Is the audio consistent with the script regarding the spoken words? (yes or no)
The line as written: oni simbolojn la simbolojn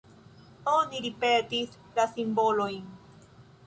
no